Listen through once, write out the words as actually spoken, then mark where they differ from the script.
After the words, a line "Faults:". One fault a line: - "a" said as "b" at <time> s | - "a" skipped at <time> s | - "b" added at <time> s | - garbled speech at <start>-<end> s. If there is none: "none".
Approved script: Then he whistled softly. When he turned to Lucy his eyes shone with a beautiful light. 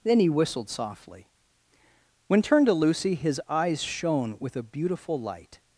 Then he whistled softly. When turned to Lucy his eyes shone with a beautiful light.
Faults:
- "he" skipped at 2.4 s